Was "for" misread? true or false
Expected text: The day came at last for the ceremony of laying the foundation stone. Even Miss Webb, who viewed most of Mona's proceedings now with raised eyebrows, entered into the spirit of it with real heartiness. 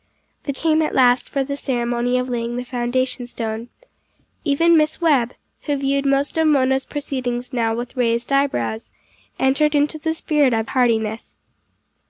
false